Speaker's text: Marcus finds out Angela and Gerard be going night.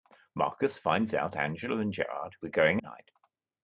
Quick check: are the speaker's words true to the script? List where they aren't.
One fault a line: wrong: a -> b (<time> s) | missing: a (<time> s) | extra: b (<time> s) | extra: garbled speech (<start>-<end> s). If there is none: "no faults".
no faults